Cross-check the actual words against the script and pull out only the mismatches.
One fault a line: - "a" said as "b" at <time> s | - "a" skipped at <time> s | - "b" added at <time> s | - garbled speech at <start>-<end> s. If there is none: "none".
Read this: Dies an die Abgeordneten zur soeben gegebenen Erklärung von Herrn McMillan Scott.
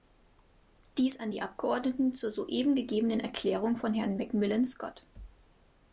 none